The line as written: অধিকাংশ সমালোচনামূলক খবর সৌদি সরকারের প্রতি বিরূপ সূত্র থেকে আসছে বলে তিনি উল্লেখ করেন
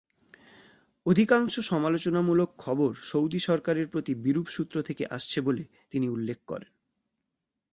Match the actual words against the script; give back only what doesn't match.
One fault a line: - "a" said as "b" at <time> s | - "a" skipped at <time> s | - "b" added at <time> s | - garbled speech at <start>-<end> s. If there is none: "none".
none